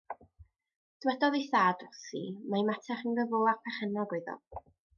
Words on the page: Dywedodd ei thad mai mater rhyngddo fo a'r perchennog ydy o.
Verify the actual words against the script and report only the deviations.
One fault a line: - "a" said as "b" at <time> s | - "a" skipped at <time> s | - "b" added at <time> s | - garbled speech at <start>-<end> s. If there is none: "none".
- "wrthi" added at 1.9 s
- "ydy" said as "oedd" at 4.2 s